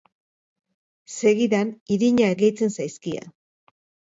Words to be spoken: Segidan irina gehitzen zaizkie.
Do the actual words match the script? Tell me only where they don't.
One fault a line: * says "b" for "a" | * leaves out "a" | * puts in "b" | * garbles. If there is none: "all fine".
all fine